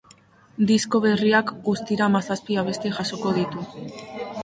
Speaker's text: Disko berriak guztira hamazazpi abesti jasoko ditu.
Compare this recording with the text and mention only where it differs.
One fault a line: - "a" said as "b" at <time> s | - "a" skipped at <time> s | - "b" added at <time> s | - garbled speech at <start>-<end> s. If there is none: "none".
none